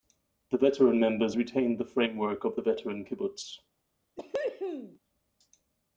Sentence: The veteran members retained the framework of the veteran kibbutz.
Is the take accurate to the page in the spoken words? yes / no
yes